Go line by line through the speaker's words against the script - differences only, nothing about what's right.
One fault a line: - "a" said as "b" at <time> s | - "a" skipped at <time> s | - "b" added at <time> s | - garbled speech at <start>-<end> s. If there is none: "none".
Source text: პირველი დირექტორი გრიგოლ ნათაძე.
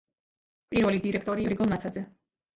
none